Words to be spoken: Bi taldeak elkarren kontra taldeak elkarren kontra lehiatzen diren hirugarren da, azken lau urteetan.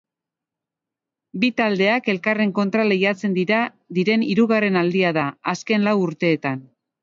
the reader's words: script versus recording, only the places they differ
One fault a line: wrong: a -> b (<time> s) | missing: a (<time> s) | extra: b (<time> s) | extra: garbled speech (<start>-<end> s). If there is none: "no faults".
missing: taldeak elkarren kontra (2.9 s)
extra: aldia (4.8 s)